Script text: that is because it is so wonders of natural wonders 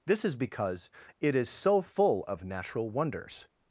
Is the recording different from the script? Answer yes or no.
yes